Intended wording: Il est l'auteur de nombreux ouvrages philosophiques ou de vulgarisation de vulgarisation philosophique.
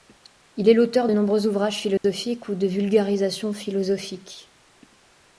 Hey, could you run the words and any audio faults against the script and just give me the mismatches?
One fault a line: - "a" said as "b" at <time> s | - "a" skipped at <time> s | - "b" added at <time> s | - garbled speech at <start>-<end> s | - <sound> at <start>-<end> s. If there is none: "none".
- dropout at 2.0-2.0 s
- "de vulgarisation" skipped at 3.5 s